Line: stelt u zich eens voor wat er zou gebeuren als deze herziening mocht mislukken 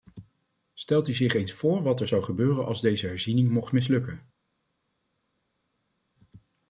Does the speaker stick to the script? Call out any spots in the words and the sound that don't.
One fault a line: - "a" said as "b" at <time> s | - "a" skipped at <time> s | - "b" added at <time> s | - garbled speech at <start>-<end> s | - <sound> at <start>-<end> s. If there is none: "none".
none